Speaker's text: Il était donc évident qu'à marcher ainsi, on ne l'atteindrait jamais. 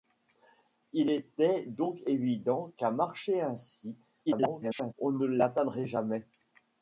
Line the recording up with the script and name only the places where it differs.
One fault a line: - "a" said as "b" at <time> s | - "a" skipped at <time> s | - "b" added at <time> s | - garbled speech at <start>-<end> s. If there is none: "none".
- garbled speech at 4.3-4.9 s